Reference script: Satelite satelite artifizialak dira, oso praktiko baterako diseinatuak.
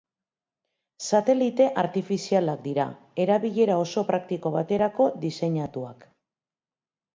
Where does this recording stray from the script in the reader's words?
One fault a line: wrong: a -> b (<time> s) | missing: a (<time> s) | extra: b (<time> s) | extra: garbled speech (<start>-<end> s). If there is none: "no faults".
missing: satelite (1.7 s)
extra: erabilera (3.3 s)